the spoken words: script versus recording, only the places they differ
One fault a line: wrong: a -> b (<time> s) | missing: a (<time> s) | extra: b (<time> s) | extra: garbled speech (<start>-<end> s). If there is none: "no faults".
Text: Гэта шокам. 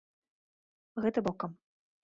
no faults